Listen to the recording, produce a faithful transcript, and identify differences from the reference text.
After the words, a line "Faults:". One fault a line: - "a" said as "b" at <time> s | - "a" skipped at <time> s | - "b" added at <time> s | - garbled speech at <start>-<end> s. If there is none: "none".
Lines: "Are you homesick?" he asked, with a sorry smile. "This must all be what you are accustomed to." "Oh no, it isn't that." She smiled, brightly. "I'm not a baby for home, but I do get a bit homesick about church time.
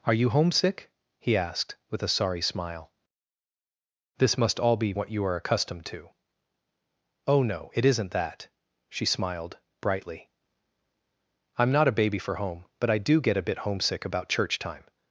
"Are you homesick?" he asked, with a sorry smile. "This must all be what you are accustomed to." "Oh no, it isn't that." She smiled, brightly. "I'm not a baby for home, but I do get a bit homesick about church time.
Faults:
none